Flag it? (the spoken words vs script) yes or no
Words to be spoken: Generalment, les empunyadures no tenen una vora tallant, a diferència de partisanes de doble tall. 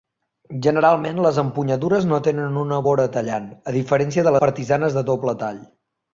no